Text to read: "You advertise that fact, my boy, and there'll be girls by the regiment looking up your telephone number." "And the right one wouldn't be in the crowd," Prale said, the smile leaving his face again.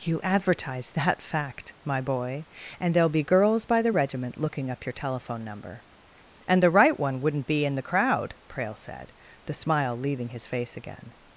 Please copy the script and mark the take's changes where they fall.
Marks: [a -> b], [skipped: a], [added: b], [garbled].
"You advertise that fact, my boy, and there'll be girls by the regiment looking up your telephone number." "And the right one wouldn't be in the crowd," Prale said, the smile leaving his face again.